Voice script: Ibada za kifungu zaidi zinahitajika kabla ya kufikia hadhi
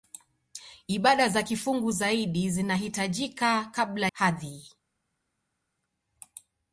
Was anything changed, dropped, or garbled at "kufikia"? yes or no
yes